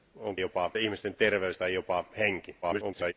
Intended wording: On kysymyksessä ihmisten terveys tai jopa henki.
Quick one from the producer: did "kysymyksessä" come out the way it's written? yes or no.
no